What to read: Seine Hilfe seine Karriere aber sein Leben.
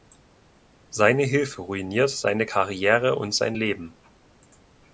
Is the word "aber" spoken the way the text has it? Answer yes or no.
no